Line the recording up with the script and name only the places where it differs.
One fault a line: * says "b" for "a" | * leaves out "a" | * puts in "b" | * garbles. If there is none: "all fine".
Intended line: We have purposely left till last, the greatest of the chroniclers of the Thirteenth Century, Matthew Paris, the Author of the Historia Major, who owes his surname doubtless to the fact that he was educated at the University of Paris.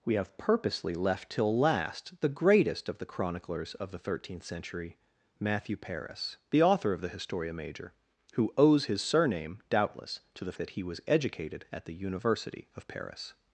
* leaves out "fact"